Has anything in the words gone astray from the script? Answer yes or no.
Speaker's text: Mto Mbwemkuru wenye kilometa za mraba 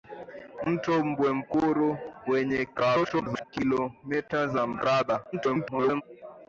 yes